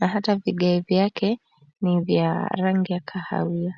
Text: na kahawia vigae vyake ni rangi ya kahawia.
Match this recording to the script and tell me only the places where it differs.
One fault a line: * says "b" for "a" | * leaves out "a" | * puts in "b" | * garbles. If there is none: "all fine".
* says "hata" for "kahawia"
* puts in "vya"